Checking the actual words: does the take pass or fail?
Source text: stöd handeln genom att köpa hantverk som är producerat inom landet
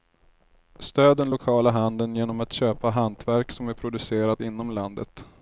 fail